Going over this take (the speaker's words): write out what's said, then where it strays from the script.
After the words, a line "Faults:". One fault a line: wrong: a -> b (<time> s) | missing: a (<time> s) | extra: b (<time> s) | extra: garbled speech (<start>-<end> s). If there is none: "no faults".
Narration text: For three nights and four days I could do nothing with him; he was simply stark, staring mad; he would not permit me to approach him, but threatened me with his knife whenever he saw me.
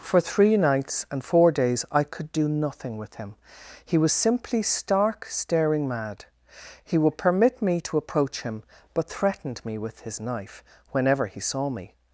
For three nights and four days I could do nothing with him; he was simply stark, staring mad; he would permit me to approach him, but threatened me with his knife whenever he saw me.
Faults:
missing: not (7.2 s)